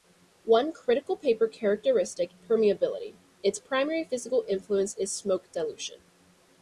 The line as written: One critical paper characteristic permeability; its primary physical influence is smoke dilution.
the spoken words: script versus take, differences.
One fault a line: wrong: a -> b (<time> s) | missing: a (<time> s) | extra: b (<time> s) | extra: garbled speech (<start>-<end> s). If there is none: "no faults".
no faults